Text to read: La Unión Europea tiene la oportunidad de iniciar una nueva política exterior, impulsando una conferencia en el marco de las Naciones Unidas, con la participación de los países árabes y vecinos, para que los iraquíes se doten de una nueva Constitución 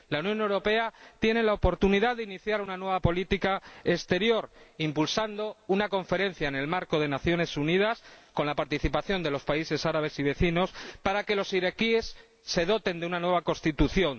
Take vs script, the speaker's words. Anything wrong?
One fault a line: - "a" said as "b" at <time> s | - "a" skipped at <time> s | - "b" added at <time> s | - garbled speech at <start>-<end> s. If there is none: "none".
none